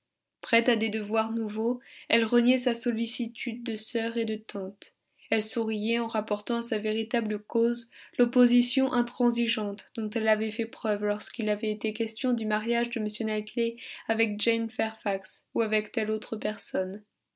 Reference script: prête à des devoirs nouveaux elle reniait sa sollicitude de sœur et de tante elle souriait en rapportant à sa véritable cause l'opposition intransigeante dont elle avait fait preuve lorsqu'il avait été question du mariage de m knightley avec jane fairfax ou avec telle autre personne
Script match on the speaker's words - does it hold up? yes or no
yes